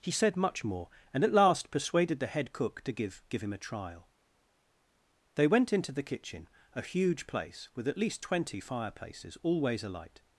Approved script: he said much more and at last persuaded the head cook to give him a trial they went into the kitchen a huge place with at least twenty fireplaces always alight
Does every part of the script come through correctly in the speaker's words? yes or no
no